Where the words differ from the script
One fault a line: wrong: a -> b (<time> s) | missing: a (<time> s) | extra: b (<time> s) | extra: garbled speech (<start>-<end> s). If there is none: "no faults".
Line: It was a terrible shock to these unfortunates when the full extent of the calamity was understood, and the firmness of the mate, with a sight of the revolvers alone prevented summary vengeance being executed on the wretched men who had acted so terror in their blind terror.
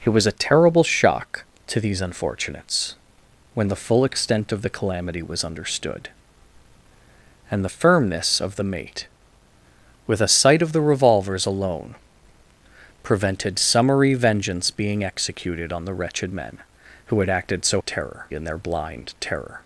no faults